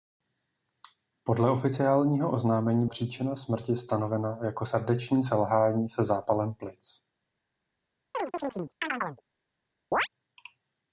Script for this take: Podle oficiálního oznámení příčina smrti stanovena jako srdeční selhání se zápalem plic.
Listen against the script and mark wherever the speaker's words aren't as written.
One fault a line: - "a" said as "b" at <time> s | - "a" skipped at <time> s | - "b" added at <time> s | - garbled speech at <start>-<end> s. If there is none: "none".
none